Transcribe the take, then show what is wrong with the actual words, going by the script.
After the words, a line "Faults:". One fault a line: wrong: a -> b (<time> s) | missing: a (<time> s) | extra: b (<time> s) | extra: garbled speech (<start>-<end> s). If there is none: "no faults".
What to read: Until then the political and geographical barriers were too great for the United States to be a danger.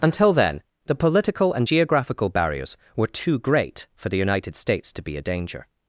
Until then the political and geographical barriers were too great for the United States to be a danger.
Faults:
no faults